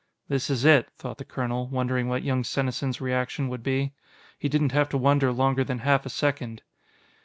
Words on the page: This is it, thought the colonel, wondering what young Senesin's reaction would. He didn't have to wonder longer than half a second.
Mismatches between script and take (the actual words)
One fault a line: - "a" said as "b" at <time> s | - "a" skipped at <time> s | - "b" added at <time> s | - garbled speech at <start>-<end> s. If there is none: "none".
- "be" added at 3.6 s